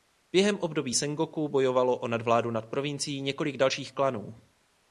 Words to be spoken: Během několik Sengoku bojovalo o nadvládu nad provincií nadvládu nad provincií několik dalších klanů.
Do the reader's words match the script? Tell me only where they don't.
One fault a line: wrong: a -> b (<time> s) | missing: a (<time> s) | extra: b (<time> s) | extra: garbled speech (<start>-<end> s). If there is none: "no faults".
wrong: několik -> období (0.6 s)
missing: nadvládu nad provincií (3.2 s)